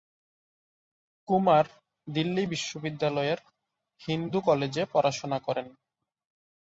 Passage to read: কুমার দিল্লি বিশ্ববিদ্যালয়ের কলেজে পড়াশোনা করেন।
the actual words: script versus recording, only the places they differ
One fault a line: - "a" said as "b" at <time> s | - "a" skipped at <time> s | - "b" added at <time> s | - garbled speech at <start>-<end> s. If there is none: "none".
- "হিন্দু" added at 4.0 s